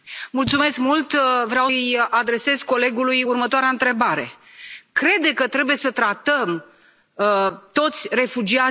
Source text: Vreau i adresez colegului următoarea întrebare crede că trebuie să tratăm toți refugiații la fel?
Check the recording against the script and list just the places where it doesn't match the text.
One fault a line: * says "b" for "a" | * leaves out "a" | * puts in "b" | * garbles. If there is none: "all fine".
all fine